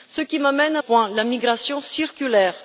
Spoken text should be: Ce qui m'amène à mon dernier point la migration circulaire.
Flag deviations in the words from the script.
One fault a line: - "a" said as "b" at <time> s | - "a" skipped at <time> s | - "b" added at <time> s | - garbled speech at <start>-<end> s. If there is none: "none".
- "mon dernier" skipped at 0.8 s